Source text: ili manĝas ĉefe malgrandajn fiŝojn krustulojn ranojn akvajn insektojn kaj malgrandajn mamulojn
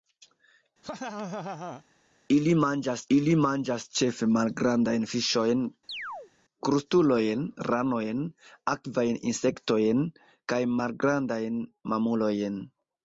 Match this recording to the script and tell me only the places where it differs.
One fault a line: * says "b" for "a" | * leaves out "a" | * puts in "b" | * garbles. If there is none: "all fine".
* puts in "ili manĝas"